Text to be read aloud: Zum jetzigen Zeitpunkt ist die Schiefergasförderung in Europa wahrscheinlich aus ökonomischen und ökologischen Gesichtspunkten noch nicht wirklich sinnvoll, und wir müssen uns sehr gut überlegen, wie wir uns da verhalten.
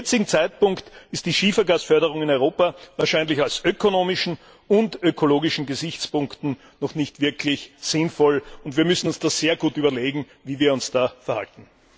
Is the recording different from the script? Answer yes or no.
no